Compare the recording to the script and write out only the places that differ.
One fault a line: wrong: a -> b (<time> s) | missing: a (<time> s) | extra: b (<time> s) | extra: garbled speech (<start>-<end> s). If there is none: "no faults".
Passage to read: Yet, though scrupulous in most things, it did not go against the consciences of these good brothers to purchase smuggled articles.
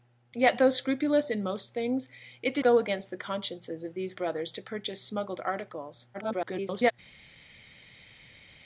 missing: not (2.6 s)
missing: good (4.1 s)
extra: garbled speech (6.1-6.9 s)